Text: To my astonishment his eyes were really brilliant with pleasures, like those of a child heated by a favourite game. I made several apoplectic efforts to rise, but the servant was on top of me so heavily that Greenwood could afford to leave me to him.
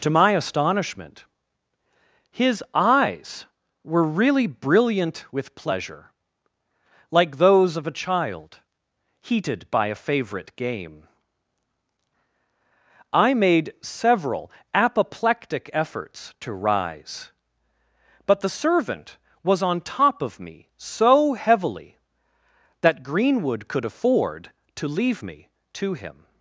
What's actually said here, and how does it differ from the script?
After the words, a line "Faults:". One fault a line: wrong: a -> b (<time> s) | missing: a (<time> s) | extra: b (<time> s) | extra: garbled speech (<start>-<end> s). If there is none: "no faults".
To my astonishment his eyes were really brilliant with pleasure, like those of a child heated by a favourite game. I made several apoplectic efforts to rise, but the servant was on top of me so heavily that Greenwood could afford to leave me to him.
Faults:
wrong: pleasures -> pleasure (5.6 s)